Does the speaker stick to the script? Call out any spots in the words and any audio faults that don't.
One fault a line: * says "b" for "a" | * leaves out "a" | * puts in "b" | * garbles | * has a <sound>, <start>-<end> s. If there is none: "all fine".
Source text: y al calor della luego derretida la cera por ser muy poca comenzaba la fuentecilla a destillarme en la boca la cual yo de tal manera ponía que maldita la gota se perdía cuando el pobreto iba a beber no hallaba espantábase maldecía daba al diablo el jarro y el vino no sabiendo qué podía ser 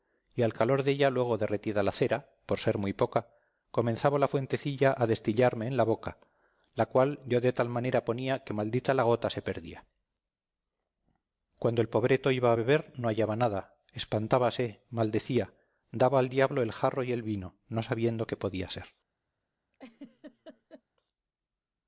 * puts in "nada"
* has a laugh, 19.7-20.8 s